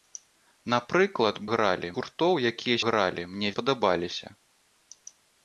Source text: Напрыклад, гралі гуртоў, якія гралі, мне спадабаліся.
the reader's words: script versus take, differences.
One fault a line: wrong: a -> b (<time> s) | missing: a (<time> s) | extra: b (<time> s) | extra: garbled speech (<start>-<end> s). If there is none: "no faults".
no faults